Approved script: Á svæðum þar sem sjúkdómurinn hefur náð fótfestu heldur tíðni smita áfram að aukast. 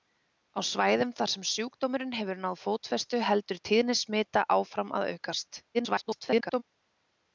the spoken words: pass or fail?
fail